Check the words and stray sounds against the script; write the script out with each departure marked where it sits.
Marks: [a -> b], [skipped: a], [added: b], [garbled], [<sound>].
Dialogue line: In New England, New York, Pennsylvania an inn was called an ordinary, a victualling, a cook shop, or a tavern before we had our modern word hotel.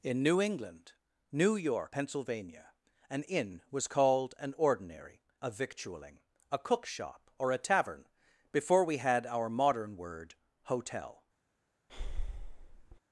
In New England, New York, Pennsylvania an inn was called an ordinary, a victualling, a cook shop, or a tavern before we had our modern word hotel. [breath]